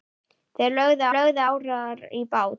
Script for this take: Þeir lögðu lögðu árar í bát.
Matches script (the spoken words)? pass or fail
pass